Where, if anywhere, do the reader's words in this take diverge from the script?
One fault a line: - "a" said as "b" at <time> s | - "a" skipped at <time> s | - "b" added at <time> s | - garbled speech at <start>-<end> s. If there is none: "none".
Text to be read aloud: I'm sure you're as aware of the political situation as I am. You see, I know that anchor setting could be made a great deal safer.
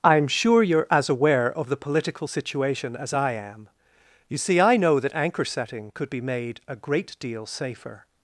none